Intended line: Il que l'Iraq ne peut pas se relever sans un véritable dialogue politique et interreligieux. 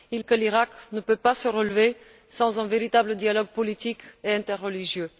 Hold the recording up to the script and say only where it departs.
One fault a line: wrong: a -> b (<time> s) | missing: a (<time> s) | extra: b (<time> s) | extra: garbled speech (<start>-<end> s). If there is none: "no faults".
no faults